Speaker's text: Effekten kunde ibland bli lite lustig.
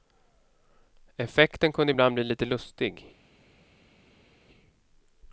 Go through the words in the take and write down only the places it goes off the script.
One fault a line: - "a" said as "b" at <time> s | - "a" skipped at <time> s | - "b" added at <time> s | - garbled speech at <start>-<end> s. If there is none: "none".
none